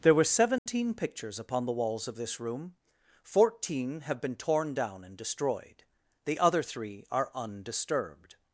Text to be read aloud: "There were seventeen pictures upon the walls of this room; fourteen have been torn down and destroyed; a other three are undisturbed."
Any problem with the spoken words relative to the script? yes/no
yes